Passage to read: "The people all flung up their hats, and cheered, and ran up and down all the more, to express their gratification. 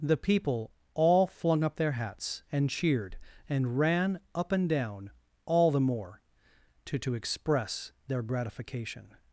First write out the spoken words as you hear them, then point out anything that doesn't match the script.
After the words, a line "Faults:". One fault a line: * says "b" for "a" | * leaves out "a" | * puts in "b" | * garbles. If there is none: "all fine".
"The people all flung up their hats, and cheered, and ran up and down all the more, to to express their gratification.
Faults:
* puts in "to"